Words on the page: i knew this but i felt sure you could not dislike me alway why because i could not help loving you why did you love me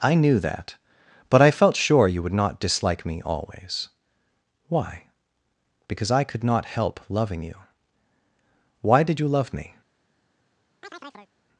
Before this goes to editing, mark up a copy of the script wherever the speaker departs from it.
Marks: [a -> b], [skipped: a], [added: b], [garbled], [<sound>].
i knew [this -> that] but i felt sure you [could -> would] not dislike me [alway -> always] why because i could not help loving you why did you love me [chirp]